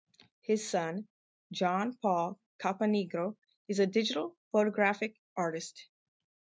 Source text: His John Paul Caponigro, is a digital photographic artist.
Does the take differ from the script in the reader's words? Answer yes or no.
yes